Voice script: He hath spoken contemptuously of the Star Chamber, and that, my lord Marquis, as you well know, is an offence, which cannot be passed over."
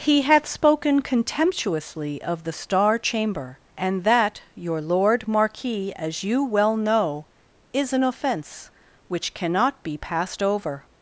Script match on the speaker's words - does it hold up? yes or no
no